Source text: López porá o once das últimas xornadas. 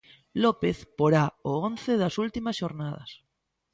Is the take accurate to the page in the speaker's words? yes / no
yes